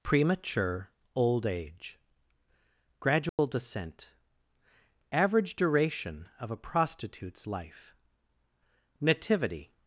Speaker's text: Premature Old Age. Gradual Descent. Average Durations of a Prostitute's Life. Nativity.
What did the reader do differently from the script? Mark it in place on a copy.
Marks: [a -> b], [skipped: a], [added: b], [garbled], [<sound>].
Premature Old Age. Gradual [dropout] Descent. Average [Durations -> Duration] of a Prostitute's Life. Nativity.